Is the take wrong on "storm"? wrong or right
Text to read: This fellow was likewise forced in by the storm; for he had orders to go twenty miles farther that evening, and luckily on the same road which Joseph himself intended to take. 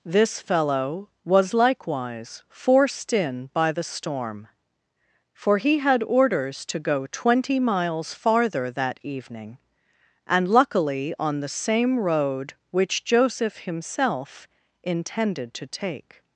right